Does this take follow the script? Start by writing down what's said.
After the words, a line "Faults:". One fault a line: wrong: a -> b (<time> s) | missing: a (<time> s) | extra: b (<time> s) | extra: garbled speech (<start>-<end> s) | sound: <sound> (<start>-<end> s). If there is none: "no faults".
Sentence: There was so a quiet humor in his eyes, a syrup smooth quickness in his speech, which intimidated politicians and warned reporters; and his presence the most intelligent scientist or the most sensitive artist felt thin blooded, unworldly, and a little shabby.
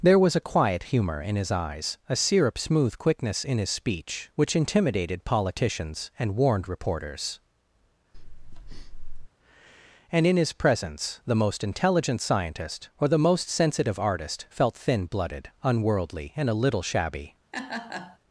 There was a quiet humor in his eyes, a syrup smooth quickness in his speech, which intimidated politicians and warned reporters; and in his presence the most intelligent scientist or the most sensitive artist felt thin blooded, unworldly, and a little shabby.
Faults:
missing: so (0.3 s)
sound: breath (8.1-9.3 s)
extra: in (10.3 s)
sound: laugh (17.5-18.2 s)